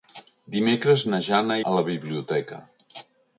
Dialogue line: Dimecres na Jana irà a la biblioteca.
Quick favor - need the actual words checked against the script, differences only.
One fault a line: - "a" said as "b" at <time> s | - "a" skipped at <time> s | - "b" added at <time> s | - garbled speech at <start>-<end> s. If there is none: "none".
- "irà" skipped at 1.6 s